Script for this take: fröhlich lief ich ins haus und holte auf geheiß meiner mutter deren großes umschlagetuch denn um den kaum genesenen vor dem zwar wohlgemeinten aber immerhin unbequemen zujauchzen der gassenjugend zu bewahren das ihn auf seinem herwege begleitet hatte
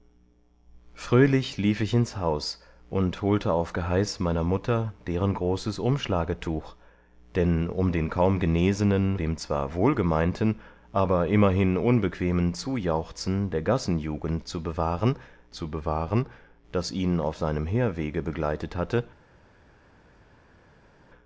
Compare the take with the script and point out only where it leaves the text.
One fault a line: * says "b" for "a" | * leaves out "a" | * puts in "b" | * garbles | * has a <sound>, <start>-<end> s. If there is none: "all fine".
* leaves out "vor"
* puts in "zu bewahren"